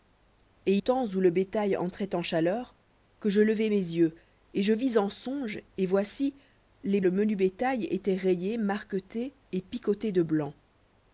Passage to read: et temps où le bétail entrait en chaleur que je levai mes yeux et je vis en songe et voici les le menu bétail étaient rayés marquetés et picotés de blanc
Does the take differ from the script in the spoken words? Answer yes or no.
no